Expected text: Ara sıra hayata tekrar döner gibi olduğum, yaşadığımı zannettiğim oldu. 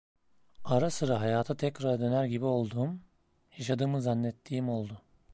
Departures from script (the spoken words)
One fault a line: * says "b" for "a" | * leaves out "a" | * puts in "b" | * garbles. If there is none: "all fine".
all fine